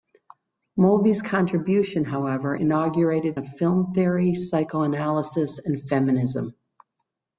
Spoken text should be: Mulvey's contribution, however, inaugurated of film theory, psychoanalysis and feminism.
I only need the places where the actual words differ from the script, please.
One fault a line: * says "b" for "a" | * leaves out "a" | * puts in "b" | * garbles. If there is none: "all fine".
all fine